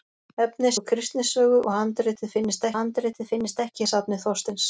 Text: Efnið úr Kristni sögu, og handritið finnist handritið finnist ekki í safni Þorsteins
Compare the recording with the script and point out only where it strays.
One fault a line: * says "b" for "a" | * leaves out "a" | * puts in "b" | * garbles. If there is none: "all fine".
all fine